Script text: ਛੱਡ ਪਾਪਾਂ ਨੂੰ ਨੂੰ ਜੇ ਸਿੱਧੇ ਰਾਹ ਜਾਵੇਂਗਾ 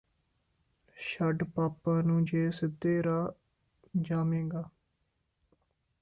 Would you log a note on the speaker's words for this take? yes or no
yes